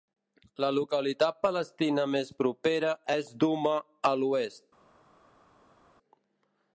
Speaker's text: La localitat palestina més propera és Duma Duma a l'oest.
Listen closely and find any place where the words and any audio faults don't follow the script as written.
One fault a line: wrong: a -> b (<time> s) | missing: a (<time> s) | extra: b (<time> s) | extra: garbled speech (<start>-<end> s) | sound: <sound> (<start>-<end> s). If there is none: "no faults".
missing: Duma (3.8 s)